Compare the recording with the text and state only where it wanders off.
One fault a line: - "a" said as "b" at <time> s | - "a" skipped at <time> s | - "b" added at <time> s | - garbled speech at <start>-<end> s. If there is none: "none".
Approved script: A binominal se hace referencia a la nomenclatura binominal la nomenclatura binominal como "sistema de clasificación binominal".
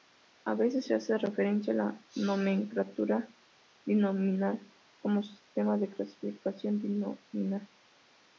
- "binominal" said as "veces" at 0.6 s
- "la nomenclatura binominal" skipped at 4.6 s